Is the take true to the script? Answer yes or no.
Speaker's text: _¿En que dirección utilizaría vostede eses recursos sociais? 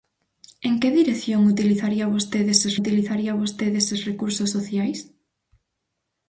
no